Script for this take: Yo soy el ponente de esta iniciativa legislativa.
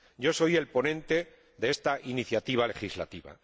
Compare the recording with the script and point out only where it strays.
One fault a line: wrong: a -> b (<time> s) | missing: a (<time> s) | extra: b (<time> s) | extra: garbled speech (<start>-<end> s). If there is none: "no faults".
no faults